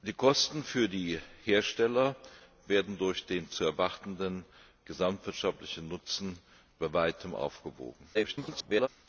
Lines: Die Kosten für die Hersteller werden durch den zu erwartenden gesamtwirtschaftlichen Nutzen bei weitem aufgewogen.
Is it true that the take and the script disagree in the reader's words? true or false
true